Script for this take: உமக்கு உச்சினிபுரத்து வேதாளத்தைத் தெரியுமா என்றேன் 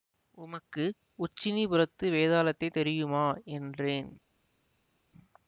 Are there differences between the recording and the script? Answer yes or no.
no